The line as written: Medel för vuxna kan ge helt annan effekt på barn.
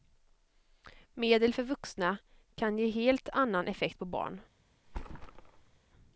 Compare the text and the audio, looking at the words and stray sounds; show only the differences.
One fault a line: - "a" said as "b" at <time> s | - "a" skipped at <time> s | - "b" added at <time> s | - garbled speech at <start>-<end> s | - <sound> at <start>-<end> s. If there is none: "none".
- thud at 4.8-5.8 s